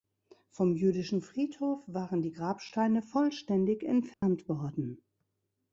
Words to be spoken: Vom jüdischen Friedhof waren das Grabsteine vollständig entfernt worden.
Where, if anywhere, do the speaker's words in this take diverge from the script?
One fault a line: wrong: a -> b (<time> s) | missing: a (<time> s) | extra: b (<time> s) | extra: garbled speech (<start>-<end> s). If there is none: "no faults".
wrong: das -> die (2.2 s)